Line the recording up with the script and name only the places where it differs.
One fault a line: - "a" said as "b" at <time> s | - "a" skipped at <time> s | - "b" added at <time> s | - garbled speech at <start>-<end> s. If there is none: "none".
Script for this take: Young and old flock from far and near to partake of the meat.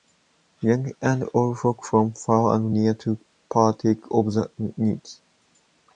none